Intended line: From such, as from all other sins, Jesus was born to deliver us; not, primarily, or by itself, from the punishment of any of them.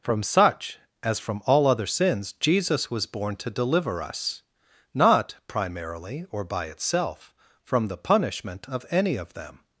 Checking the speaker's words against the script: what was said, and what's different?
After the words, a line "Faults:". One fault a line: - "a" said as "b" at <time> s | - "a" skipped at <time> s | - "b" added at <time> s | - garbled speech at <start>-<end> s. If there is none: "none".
From such, as from all other sins, Jesus was born to deliver us; not, primarily, or by itself, from the punishment of any of them.
Faults:
none